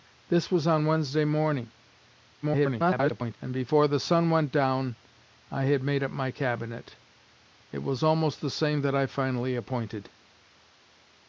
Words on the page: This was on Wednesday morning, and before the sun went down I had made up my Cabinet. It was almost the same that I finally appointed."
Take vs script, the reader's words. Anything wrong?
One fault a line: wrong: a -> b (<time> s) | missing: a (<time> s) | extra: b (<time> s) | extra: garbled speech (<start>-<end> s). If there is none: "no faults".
extra: garbled speech (2.4-3.4 s)